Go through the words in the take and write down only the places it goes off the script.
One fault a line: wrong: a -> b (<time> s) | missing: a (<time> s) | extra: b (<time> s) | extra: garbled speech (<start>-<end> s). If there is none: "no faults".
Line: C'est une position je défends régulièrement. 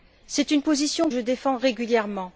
no faults